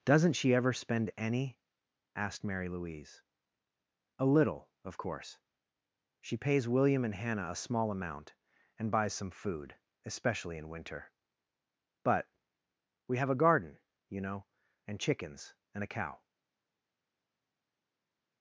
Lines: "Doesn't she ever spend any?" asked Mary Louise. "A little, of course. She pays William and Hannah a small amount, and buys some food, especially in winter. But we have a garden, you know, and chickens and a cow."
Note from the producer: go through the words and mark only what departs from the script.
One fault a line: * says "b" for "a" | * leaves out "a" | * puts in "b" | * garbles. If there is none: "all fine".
all fine